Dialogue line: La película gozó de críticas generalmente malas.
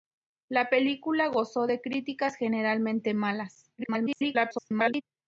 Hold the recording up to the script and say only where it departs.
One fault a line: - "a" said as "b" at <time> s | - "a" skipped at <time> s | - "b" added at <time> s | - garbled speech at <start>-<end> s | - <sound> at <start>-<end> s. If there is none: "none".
- garbled speech at 3.8-5.0 s